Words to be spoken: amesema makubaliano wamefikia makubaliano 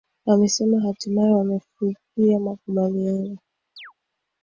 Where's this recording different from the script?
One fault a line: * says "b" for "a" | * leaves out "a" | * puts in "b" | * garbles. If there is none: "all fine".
* says "hatimaye" for "makubaliano"